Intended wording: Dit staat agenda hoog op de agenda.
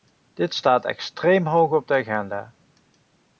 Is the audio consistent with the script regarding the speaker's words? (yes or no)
no